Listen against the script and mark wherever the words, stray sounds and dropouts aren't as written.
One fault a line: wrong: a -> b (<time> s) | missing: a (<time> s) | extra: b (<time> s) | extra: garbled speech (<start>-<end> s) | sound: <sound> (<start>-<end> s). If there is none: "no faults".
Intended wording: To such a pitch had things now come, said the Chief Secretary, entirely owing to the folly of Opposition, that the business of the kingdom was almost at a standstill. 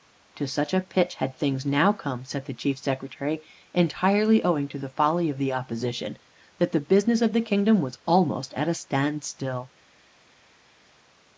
extra: the (5.4 s)